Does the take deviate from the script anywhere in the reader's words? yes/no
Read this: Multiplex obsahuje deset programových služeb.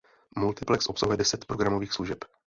no